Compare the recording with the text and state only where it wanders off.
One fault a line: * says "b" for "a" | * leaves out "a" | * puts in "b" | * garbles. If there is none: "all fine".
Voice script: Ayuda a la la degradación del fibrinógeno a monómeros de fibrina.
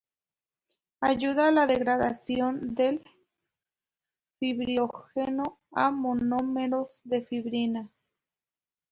* leaves out "la"